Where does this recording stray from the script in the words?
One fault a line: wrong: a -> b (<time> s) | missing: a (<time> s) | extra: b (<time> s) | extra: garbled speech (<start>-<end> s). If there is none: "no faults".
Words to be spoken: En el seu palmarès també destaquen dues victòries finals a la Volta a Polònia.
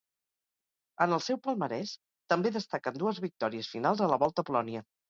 no faults